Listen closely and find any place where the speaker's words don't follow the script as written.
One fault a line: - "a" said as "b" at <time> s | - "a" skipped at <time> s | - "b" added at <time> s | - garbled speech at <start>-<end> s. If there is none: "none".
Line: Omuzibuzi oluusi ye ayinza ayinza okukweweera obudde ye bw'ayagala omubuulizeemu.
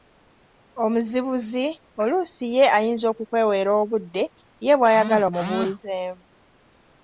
- "ayinza" skipped at 3.0 s